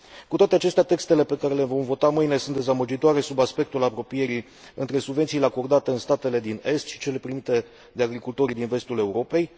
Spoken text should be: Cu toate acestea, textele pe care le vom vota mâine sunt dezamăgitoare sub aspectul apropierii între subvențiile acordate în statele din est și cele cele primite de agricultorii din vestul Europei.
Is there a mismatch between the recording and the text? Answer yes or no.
yes